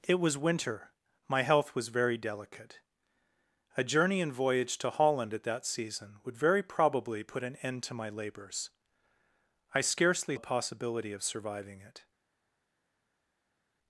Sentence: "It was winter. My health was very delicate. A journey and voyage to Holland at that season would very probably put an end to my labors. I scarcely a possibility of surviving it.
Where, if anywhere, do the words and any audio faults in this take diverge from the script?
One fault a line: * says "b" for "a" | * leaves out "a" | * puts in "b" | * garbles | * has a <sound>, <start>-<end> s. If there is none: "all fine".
all fine